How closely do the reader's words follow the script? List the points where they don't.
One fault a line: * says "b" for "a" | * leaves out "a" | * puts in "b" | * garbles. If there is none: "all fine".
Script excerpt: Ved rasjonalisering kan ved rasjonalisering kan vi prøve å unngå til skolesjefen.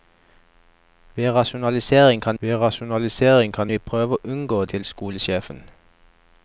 all fine